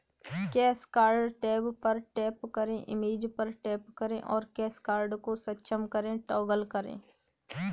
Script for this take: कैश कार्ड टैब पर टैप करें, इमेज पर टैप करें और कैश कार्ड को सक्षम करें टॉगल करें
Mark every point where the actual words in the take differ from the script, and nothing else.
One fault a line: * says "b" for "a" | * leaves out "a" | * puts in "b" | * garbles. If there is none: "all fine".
all fine